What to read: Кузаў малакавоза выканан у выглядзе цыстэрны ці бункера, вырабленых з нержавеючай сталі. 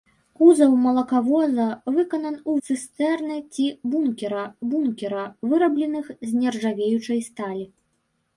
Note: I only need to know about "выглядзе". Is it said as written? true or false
false